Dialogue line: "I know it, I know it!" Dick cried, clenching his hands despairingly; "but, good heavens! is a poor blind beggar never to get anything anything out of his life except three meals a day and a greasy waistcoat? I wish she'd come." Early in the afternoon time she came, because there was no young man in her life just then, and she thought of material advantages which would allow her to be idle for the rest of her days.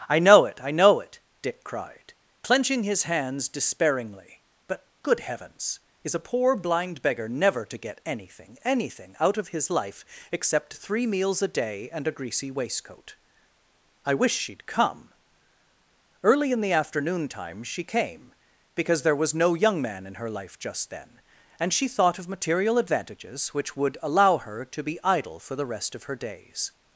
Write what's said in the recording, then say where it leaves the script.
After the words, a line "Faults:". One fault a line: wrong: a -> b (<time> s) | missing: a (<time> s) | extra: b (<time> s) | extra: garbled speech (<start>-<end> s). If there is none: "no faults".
"I know it, I know it!" Dick cried, clenching his hands despairingly; "but, good heavens! is a poor blind beggar never to get anything anything out of his life except three meals a day and a greasy waistcoat? I wish she'd come." Early in the afternoon time she came, because there was no young man in her life just then, and she thought of material advantages which would allow her to be idle for the rest of her days.
Faults:
no faults